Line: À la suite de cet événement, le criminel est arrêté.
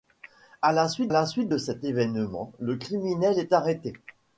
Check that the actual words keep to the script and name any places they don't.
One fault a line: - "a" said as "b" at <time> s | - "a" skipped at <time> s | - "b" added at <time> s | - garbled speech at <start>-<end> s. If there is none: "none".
- "la suite" added at 1.1 s